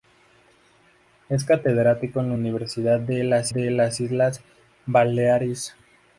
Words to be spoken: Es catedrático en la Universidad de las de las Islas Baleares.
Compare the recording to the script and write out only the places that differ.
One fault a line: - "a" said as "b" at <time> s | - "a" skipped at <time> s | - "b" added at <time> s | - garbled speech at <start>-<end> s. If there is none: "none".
none